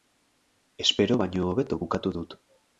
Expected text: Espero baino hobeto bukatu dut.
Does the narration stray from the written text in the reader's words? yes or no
no